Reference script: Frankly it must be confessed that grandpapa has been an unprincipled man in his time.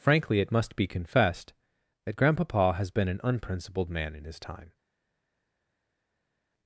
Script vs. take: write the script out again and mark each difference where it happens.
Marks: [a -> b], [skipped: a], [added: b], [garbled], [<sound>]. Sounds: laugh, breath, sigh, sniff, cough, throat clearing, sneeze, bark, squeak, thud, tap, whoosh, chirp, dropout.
Frankly it must be confessed that grandpapa has been an unprincipled man in his time.